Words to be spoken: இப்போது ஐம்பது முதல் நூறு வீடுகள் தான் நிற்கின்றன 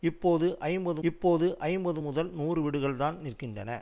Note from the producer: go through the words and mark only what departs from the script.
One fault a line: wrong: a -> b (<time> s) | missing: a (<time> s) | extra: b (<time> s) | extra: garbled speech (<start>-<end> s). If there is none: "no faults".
extra: இப்போது ஐம்பது (1.0 s)